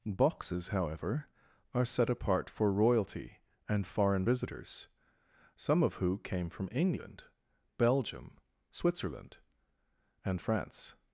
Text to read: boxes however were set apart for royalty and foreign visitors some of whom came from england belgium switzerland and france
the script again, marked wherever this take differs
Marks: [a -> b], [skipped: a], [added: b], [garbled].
boxes however [were -> are] set apart for royalty and foreign visitors some of [whom -> who] came from england belgium switzerland and france